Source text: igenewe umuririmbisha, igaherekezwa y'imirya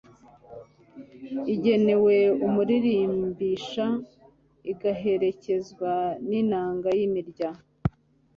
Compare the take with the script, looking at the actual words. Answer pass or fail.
fail